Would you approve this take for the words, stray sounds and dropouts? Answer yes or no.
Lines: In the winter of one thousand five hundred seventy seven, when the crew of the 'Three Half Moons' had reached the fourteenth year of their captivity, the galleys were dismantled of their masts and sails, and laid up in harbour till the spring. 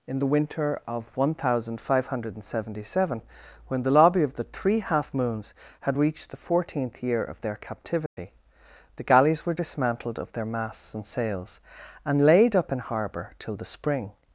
no